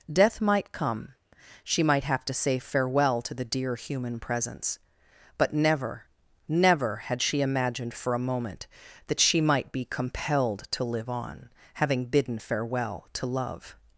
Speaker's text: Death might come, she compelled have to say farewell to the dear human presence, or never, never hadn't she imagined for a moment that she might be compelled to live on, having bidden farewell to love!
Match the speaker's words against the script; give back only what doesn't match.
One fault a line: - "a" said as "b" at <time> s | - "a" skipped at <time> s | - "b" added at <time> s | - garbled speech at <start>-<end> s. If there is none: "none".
- "compelled" said as "might" at 1.8 s
- "or" said as "but" at 5.4 s
- "hadn't" said as "had" at 7.0 s